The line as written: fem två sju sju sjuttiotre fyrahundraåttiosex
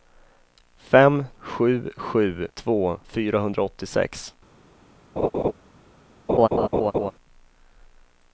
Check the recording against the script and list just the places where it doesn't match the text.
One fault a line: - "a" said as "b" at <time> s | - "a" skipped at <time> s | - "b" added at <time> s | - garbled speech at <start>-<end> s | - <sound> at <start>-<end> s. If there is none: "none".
- "två" skipped at 1.2 s
- "sjuttiotre" said as "två" at 2.5 s
- laugh at 5.2-5.5 s
- laugh at 6.3-7.1 s